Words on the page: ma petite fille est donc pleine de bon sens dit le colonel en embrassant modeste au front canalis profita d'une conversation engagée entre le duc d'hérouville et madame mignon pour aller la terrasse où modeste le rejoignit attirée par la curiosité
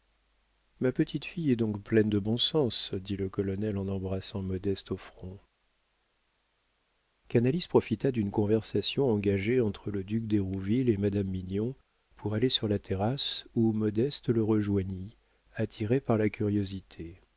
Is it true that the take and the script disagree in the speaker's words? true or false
true